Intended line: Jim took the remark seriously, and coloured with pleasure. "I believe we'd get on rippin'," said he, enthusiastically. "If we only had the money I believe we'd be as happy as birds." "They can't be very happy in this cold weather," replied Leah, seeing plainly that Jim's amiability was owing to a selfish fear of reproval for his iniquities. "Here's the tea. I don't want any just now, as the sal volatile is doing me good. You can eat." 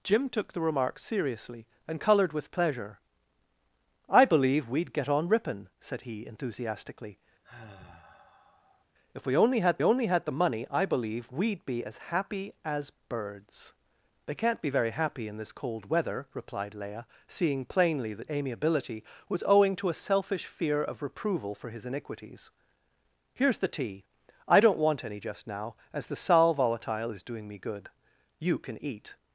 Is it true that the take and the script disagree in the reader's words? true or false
true